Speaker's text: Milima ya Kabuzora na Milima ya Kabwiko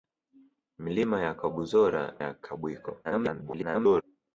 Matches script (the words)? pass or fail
fail